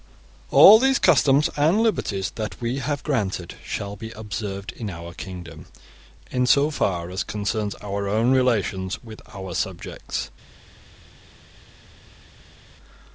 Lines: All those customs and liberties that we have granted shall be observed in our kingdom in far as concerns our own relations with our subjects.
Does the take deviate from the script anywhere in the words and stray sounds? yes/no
yes